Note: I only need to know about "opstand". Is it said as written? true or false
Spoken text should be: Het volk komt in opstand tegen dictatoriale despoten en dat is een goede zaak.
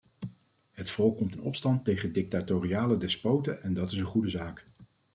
true